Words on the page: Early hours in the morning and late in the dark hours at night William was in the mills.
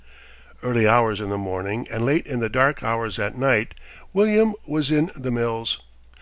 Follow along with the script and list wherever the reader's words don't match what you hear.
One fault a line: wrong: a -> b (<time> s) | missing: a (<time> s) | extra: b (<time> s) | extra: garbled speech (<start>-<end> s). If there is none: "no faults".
no faults